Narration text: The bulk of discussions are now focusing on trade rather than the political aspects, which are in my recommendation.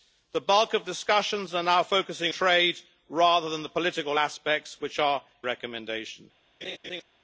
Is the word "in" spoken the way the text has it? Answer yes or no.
no